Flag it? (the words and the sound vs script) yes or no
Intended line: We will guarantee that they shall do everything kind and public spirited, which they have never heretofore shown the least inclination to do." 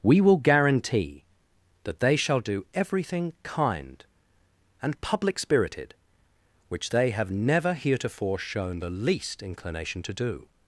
no